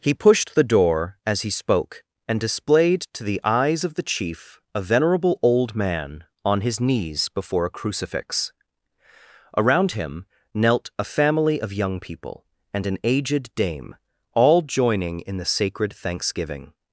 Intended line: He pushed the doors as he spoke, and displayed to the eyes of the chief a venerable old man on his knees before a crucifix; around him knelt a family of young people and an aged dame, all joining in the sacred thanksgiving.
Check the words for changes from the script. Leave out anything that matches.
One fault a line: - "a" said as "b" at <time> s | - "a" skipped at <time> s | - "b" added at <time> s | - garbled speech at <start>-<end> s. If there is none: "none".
- "doors" said as "door" at 0.6 s